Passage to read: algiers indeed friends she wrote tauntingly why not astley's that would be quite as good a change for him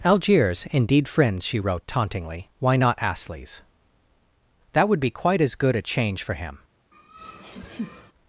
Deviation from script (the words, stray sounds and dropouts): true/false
true